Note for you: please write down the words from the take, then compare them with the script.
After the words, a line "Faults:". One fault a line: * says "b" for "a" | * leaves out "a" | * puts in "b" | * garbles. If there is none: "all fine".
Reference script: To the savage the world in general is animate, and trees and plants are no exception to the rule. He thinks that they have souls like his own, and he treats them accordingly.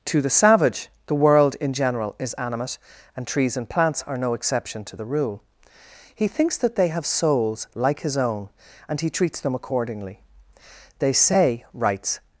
To the savage the world in general is animate, and trees and plants are no exception to the rule. He thinks that they have souls like his own, and he treats them accordingly. "They say," writes
Faults:
* puts in "They say writes"